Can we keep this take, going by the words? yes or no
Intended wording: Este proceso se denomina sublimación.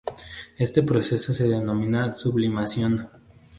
yes